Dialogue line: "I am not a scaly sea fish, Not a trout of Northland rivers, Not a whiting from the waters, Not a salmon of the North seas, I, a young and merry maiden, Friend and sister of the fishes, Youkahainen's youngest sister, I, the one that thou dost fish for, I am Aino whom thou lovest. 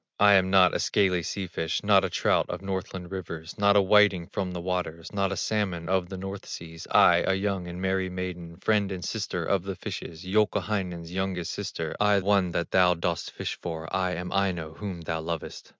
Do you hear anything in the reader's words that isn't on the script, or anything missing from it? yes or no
yes